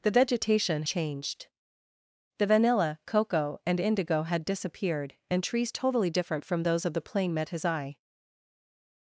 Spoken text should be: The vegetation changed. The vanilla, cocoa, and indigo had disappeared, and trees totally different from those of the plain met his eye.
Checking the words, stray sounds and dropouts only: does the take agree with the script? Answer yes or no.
yes